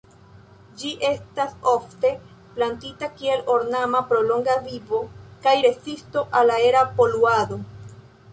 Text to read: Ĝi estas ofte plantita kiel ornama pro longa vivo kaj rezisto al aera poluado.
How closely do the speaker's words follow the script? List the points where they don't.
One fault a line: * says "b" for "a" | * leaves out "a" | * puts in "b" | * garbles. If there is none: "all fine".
all fine